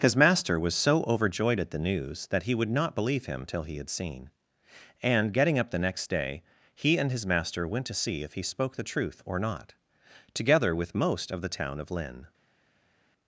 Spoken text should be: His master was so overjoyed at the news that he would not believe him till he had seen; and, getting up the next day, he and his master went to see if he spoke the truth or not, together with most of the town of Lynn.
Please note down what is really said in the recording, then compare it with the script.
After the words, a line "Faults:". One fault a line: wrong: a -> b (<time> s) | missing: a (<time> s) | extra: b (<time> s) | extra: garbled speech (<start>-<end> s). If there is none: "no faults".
His master was so overjoyed at the news that he would not believe him till he had seen; and, getting up the next day, he and his master went to see if he spoke the truth or not, together with most of the town of Lynn.
Faults:
no faults